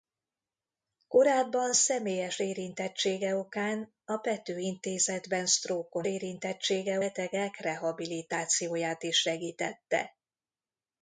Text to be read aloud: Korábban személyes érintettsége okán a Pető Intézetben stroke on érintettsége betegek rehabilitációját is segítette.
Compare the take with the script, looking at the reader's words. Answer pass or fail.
pass